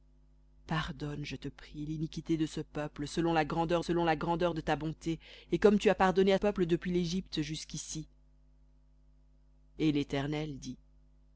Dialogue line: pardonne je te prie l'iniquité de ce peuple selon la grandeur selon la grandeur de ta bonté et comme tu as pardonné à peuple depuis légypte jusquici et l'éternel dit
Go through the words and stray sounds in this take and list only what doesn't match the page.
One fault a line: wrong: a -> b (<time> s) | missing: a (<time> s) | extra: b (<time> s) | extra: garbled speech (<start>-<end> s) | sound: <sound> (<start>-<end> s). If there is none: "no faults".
no faults